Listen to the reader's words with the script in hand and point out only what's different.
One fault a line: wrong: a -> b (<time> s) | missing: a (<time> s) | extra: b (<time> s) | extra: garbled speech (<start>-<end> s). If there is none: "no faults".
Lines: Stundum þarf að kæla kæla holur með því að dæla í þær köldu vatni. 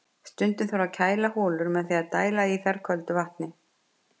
missing: kæla (1.3 s)